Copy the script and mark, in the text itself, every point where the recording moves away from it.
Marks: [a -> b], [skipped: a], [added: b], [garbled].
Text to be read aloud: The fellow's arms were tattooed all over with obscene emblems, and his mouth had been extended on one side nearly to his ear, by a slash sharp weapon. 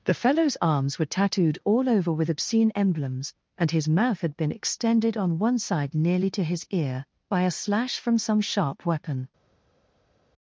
The fellow's arms were tattooed all over with obscene emblems, and his mouth had been extended on one side nearly to his ear, by a slash [added: from some] sharp weapon.